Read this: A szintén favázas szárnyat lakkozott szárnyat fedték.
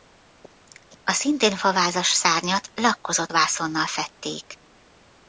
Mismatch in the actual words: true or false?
true